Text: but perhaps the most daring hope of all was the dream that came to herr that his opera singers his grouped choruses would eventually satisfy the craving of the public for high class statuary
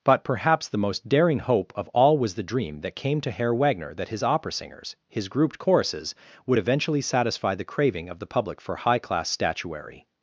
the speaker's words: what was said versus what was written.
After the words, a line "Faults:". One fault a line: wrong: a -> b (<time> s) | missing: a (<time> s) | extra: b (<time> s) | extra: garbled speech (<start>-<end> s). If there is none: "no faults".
but perhaps the most daring hope of all was the dream that came to herr wagner that his opera singers his grouped choruses would eventually satisfy the craving of the public for high class statuary
Faults:
extra: wagner (3.5 s)